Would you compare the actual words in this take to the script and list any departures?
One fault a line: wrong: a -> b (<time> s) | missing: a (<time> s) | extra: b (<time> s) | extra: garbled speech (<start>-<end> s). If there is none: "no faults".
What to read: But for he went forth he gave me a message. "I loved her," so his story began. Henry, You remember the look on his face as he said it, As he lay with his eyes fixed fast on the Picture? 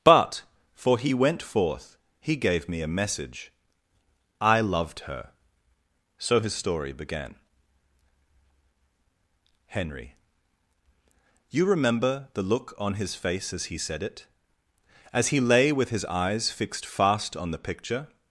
no faults